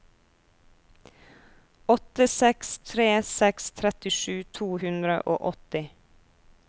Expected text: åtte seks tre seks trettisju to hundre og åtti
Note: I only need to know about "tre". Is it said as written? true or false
true